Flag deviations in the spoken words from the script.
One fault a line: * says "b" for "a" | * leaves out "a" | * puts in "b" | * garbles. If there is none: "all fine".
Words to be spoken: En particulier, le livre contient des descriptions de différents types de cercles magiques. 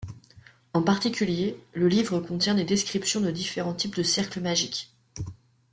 all fine